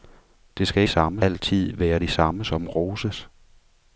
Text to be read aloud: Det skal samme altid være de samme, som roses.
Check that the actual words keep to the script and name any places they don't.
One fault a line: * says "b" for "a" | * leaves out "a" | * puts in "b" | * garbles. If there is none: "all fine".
all fine